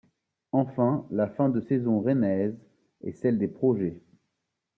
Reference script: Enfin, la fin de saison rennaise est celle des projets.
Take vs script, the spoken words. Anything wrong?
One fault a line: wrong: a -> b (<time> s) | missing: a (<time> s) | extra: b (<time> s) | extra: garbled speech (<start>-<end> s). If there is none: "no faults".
no faults